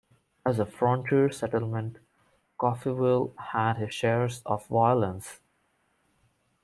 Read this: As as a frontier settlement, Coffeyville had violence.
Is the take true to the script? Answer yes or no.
no